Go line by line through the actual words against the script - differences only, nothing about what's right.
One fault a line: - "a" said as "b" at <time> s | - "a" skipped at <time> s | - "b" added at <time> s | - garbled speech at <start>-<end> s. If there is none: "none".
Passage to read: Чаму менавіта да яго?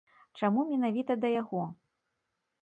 none